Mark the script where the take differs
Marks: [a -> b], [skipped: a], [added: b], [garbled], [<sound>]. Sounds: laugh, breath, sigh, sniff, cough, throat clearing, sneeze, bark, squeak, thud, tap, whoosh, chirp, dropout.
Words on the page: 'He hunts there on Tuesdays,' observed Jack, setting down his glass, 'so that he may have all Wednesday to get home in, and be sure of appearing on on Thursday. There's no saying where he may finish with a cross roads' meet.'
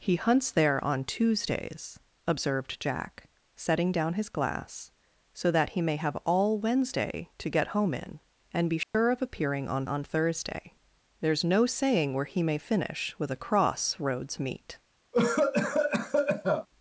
'He hunts there on Tuesdays,' observed Jack, setting down his glass, 'so that he may have all Wednesday to get home in, and be sure [dropout] of appearing on on Thursday. There's no saying where he may finish with a cross roads' meet.' [cough]